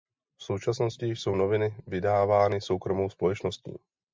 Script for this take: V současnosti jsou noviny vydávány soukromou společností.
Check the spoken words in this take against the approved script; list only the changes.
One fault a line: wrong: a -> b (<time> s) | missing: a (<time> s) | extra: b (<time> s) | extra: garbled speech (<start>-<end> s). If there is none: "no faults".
no faults